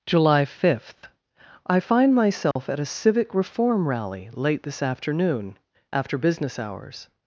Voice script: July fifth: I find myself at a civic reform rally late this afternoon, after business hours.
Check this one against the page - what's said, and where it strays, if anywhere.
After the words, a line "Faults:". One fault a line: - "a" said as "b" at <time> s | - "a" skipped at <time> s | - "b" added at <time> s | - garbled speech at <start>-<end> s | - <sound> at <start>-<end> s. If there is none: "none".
July fifth: I find myself at a civic reform rally late this afternoon, after business hours.
Faults:
- dropout at 2.5-2.6 s